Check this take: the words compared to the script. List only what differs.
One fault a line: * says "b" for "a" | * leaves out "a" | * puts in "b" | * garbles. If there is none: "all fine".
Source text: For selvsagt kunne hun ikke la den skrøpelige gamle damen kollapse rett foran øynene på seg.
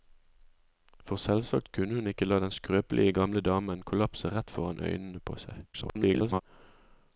* garbles